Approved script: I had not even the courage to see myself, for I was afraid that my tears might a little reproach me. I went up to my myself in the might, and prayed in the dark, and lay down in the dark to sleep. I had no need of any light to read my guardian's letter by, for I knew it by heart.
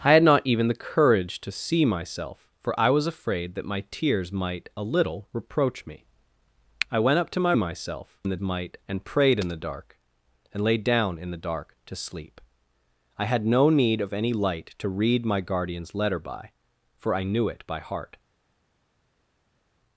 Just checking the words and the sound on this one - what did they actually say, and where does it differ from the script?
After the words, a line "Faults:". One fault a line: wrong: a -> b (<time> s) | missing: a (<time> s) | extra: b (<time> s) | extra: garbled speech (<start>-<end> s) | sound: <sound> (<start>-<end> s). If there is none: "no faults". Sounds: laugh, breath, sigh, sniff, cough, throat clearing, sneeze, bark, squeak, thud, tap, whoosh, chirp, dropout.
I had not even the courage to see myself, for I was afraid that my tears might a little reproach me. I went up to my myself in the might, and prayed in the dark, and lay down in the dark to sleep. I had no need of any light to read my guardian's letter by, for I knew it by heart.
Faults:
no faults